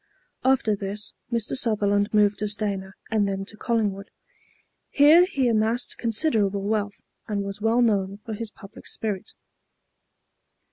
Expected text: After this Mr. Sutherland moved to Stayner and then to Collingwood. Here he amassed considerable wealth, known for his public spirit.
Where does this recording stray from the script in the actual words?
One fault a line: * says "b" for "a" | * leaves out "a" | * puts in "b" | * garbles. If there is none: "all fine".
* puts in "and was well"